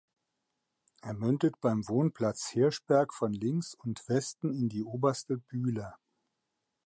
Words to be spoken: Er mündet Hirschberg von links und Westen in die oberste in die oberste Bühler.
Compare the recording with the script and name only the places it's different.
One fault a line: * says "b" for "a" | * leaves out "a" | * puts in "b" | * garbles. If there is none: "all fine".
* puts in "beim Wohnplatz"
* leaves out "in die oberste"